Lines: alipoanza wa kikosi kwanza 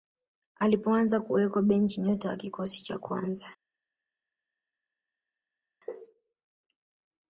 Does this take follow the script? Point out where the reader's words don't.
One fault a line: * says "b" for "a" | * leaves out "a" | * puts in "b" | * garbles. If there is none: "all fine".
* puts in "kuwekwa benchi nyota"
* puts in "cha"